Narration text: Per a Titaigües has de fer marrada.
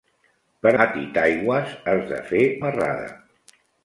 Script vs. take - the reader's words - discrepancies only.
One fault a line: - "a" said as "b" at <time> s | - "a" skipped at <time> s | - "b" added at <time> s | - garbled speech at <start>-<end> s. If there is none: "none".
none